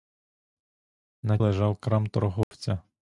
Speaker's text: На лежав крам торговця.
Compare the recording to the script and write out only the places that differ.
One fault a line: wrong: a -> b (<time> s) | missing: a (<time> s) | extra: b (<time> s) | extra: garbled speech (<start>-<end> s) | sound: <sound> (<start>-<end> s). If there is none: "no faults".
sound: dropout (2.4-2.5 s)